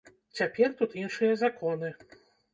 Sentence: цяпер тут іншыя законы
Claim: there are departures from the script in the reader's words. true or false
false